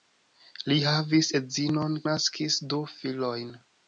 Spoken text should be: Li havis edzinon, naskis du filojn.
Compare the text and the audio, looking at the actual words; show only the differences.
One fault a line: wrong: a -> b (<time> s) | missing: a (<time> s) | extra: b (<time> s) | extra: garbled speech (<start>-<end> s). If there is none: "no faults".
no faults